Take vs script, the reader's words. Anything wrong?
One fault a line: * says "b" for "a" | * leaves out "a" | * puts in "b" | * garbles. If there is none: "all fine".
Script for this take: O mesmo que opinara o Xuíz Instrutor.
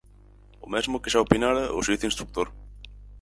* puts in "xa"